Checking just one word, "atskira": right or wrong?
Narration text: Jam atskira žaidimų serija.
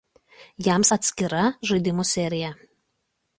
right